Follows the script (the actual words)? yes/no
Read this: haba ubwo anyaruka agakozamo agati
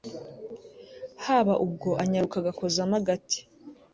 yes